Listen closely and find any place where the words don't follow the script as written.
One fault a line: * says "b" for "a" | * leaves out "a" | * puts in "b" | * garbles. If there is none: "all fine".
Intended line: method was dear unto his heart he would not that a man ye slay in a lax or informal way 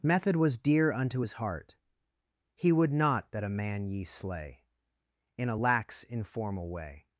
* leaves out "or"